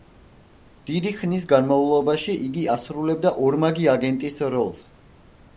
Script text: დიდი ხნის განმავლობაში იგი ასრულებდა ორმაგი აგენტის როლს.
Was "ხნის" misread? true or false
false